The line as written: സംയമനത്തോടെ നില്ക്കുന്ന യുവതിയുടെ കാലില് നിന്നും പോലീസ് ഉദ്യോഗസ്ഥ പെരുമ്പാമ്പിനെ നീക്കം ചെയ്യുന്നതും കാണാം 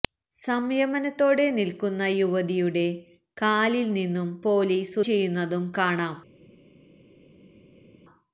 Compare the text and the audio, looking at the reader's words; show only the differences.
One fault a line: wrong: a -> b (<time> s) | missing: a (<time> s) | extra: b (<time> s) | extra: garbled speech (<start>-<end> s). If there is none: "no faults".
missing: ഉദ്യോഗസ്ഥ പെരുമ്പാമ്പിനെ നീക്കം (5.0 s)